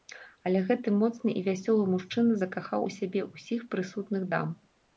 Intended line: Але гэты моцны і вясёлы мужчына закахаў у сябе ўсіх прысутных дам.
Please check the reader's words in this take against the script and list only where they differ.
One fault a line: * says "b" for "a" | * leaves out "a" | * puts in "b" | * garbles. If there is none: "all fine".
all fine